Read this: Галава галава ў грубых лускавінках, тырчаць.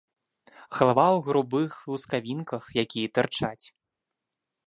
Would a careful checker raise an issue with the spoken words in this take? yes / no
yes